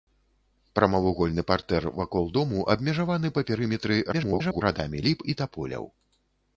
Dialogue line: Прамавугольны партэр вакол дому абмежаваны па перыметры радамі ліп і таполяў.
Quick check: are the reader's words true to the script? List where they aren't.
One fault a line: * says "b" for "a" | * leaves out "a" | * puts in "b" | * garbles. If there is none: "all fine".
* garbles